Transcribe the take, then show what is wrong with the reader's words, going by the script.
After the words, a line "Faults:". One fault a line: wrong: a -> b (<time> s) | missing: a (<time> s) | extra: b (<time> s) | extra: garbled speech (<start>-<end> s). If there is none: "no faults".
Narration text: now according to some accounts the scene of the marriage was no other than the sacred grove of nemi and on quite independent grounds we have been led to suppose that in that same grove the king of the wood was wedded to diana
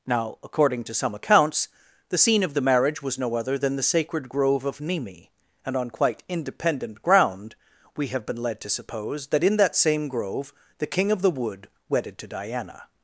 now according to some accounts the scene of the marriage was no other than the sacred grove of nemi and on quite independent ground we have been led to suppose that in that same grove the king of the wood wedded to diana
Faults:
wrong: grounds -> ground (7.0 s)
missing: was (11.7 s)